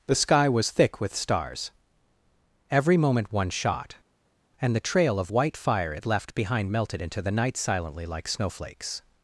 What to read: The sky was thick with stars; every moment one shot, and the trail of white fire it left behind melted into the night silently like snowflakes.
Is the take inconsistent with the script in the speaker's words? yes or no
no